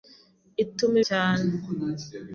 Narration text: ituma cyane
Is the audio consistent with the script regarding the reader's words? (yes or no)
yes